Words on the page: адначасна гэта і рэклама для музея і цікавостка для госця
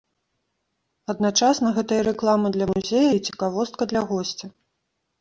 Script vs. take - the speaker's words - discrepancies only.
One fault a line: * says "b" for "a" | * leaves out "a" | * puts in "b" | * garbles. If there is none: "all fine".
all fine